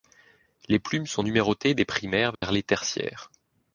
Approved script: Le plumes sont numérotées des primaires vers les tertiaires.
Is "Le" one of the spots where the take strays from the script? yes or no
yes